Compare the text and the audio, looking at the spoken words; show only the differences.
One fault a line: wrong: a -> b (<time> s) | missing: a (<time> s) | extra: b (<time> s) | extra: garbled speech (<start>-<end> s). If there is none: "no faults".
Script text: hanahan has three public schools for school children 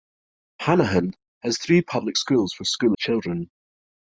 no faults